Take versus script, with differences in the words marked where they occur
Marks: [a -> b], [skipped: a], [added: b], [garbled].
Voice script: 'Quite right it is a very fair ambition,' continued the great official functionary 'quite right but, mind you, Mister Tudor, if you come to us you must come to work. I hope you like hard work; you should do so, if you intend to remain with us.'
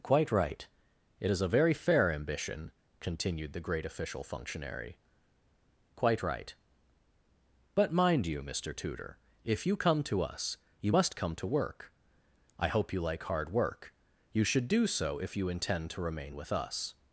'Quite right it is a very fair ambition,' continued the great official functionary 'quite right but, mind you, Mister Tudor, if you come to us you must come to work. I hope you like hard work; you should do so, if you intend to remain with us.'